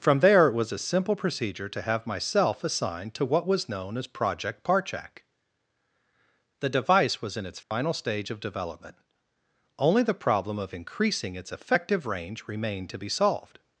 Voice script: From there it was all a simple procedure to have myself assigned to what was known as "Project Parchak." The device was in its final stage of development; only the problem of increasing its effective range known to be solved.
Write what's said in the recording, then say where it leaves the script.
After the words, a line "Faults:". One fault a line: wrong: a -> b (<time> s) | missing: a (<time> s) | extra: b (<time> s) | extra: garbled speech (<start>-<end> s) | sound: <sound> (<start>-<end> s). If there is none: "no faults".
From there it was a simple procedure to have myself assigned to what was known as "Project Parchak." The device was in its final stage of development; only the problem of increasing its effective range remained to be solved.
Faults:
missing: all (0.7 s)
sound: dropout (7.6-7.7 s)
wrong: known -> remained (12.5 s)